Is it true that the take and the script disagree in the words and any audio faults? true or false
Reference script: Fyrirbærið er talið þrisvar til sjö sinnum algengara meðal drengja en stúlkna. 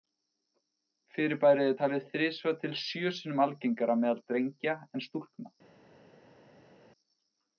false